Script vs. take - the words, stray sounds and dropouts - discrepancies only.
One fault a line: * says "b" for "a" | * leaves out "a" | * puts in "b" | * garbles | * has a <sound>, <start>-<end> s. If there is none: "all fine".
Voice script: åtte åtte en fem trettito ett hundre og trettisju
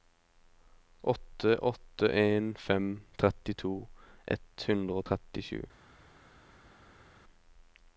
all fine